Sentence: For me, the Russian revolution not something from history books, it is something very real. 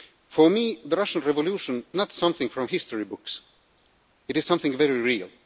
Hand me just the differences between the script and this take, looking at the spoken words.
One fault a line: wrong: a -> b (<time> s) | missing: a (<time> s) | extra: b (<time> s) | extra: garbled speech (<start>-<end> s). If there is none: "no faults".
no faults